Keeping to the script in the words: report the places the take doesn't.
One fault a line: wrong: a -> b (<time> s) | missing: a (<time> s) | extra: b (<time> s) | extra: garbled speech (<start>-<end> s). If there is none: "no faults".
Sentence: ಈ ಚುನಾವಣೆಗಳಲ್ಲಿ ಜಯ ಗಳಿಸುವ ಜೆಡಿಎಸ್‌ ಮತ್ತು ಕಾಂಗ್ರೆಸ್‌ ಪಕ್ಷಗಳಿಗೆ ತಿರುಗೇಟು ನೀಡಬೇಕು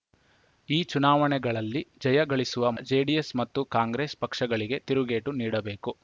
no faults